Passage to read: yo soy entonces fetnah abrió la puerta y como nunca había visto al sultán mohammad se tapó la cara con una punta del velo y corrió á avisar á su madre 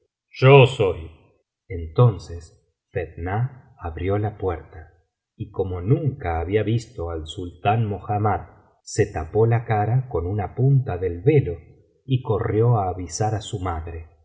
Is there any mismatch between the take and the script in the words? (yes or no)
no